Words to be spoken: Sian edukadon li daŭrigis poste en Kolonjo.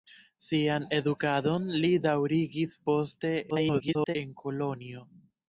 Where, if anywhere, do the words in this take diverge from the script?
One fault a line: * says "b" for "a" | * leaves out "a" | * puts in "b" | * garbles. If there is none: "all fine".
* garbles